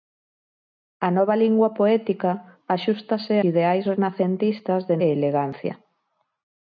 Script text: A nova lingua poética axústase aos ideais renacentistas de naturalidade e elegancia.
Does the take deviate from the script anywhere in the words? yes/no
yes